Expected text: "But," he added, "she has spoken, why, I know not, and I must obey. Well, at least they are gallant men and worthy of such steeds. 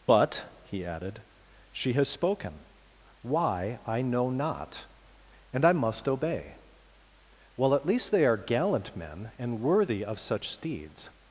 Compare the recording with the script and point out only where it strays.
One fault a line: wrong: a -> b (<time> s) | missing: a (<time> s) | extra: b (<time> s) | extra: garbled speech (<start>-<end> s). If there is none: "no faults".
no faults